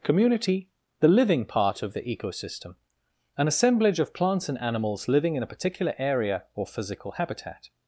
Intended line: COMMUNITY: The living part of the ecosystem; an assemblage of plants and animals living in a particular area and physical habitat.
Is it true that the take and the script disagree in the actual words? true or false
true